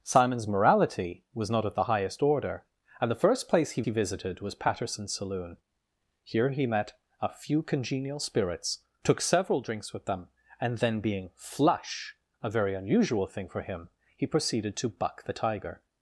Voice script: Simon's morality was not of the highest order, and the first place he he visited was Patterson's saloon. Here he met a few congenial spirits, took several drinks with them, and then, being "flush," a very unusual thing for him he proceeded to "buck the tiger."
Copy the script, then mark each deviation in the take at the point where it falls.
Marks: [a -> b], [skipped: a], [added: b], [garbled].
Simon's morality was not of the highest order, and the first place he he visited was Patterson's saloon. Here he met a few congenial spirits, took several drinks with them, and then, being "flush," a very unusual thing for him he proceeded to "buck the tiger."